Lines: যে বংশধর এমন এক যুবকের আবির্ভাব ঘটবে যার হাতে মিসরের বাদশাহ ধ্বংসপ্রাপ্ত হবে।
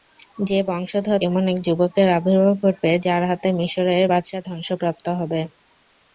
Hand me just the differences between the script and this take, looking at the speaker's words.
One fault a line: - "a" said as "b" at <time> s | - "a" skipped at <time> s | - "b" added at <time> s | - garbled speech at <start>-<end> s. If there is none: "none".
none